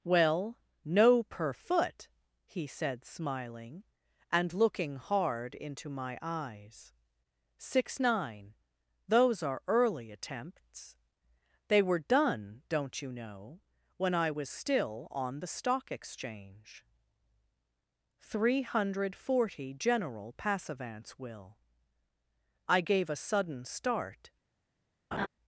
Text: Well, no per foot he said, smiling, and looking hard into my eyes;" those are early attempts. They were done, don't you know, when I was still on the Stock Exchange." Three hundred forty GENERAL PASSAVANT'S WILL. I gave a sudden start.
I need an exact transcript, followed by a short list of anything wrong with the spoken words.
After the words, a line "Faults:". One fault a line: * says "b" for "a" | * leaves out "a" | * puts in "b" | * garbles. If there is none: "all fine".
Well, no per foot he said, smiling, and looking hard into my eyes;" six nine those are early attempts. They were done, don't you know, when I was still on the Stock Exchange." Three hundred forty GENERAL PASSAVANT'S WILL. I gave a sudden start.
Faults:
* puts in "six nine"